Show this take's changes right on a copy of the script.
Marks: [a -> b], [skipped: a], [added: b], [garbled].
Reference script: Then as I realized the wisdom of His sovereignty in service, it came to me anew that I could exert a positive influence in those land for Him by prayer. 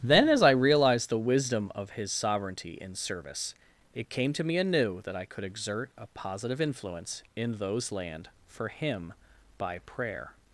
Then as I realized the wisdom of His sovereignty in service, it came to me anew that I could exert a positive influence in those land for Him by prayer.